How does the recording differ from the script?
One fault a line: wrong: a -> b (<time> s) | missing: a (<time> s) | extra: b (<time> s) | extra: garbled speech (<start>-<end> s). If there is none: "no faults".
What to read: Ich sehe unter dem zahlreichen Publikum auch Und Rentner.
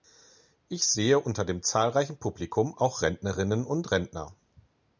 extra: Rentnerinnen (3.0 s)